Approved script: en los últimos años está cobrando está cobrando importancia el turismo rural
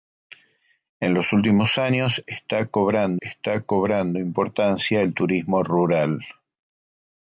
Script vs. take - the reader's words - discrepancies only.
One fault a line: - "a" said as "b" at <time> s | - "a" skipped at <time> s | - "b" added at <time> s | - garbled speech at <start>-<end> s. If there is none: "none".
none